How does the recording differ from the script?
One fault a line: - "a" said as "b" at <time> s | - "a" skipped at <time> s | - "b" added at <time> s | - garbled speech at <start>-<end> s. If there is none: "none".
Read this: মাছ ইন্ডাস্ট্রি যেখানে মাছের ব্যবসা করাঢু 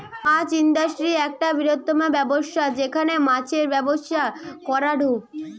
- "একটা বৃহত্তম ব্যবসা" added at 1.3 s